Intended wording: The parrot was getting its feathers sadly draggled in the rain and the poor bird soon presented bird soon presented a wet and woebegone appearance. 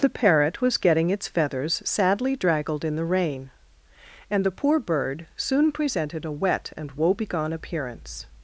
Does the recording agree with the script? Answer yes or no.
no